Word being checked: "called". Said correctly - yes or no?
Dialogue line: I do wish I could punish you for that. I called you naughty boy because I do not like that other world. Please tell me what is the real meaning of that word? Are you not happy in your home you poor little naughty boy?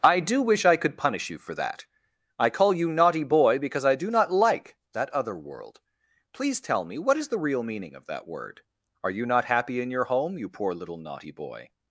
no